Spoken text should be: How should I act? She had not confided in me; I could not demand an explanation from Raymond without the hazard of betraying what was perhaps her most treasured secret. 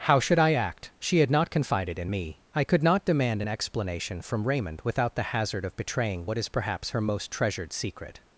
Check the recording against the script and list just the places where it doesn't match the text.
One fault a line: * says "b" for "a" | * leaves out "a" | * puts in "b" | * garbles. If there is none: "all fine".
* says "is" for "was"